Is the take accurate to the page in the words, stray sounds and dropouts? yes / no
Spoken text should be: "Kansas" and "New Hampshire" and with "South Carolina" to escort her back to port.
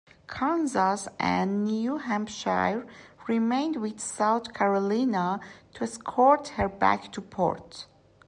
no